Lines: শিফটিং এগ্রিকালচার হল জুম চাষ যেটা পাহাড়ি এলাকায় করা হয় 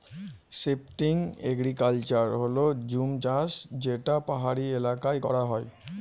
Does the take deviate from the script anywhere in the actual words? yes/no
no